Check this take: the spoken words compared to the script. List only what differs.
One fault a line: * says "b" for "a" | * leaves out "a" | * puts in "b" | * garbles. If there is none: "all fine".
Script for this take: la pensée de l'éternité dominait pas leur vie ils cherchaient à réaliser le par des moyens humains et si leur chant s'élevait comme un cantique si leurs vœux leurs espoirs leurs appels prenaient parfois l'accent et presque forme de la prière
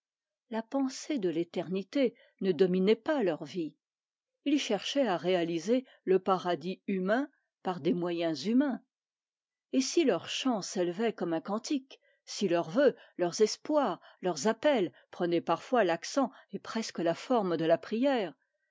* puts in "ne"
* puts in "paradis humain"
* puts in "la"